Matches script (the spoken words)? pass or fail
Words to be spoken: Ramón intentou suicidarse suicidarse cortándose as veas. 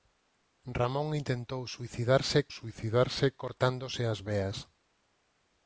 pass